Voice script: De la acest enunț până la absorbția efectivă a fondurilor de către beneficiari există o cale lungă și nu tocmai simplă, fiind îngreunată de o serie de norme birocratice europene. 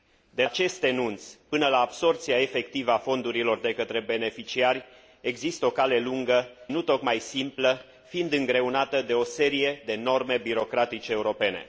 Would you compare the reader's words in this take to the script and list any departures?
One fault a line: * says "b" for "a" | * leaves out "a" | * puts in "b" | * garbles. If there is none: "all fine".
* leaves out "la"
* leaves out "și"